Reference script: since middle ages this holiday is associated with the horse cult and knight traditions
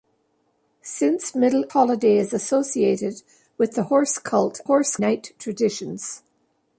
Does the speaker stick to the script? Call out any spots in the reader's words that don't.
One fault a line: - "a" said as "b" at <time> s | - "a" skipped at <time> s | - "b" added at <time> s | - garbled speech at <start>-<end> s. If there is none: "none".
- "ages this" skipped at 1.6 s
- "and" said as "horse" at 4.6 s